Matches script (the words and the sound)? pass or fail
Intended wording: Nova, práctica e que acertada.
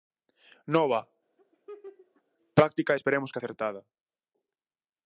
fail